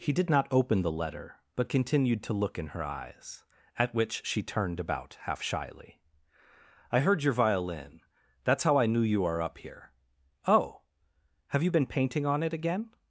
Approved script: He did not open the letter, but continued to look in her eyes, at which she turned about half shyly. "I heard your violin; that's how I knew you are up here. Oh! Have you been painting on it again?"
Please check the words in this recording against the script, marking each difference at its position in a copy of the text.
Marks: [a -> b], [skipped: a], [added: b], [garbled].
He did not open the letter, but continued to look in her eyes, at which she turned about half shyly. "I heard your violin; that's how I knew you are up here. Oh! Have you been painting on it again?"